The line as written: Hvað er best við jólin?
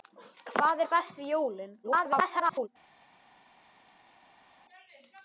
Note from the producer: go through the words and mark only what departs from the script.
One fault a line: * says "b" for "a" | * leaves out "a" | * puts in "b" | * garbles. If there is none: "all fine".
* garbles